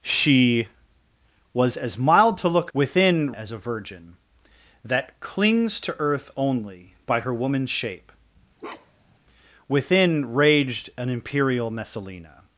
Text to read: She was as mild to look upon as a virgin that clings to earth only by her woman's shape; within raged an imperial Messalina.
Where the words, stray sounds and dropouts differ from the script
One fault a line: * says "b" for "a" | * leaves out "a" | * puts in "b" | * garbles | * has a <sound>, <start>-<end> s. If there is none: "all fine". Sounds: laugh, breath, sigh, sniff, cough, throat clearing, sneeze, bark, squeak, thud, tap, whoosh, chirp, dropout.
* says "within" for "upon"
* has a bark, 8.6-9.2 s